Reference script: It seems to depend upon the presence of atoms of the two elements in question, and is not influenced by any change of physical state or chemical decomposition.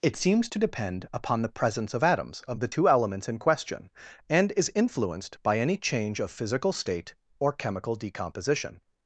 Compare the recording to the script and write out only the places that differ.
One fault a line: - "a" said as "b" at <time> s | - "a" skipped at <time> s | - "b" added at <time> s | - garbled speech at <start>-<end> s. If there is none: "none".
- "not" skipped at 4.7 s